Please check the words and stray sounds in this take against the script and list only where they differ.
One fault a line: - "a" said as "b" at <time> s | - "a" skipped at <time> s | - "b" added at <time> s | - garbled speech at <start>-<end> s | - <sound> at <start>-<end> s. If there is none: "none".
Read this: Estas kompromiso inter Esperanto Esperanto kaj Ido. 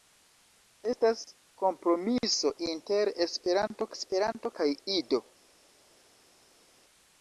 none